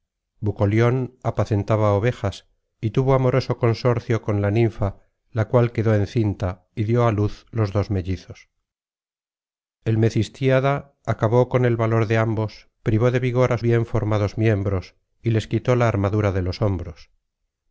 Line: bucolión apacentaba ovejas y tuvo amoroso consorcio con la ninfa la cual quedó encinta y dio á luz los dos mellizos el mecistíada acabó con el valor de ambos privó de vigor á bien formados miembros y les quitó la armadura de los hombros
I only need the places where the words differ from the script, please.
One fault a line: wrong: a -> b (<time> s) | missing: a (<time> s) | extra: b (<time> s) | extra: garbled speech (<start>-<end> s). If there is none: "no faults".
no faults